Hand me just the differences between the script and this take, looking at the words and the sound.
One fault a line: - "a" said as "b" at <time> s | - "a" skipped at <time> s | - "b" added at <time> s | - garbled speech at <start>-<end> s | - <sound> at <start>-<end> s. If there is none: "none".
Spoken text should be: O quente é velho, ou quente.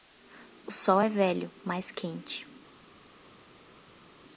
- "quente" said as "sol" at 0.7 s
- "ou" said as "mas" at 1.6 s